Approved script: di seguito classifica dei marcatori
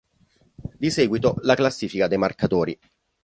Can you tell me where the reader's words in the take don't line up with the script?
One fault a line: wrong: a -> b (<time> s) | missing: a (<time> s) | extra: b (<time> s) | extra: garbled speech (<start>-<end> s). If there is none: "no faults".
extra: la (1.4 s)